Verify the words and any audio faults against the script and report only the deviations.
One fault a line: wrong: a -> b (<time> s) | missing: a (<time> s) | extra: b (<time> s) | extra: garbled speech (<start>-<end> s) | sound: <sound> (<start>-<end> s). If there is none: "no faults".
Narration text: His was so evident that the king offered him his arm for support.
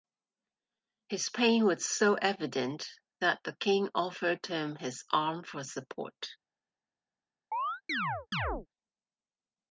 extra: pain (1.3 s)
sound: chirp (7.5-8.7 s)